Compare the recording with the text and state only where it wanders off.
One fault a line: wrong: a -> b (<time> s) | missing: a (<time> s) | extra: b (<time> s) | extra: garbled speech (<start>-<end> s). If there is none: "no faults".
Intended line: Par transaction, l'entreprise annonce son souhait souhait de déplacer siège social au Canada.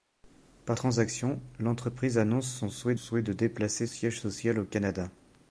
no faults